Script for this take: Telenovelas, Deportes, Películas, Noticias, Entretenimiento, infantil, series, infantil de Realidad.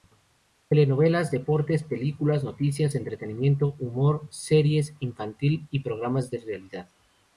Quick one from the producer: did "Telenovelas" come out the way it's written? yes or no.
yes